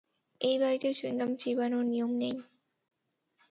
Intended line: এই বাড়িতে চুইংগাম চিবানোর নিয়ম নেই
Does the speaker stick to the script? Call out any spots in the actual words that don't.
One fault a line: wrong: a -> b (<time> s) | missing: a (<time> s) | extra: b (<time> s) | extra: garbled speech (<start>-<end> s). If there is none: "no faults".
no faults